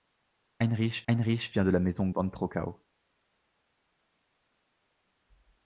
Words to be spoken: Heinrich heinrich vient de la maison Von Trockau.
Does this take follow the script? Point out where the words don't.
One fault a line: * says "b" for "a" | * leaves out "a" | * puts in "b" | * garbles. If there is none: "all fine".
all fine